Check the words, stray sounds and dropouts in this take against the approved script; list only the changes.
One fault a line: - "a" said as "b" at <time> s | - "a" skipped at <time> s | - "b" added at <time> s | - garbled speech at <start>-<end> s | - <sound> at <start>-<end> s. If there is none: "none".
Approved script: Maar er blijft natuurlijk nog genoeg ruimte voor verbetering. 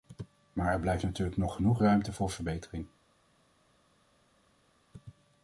none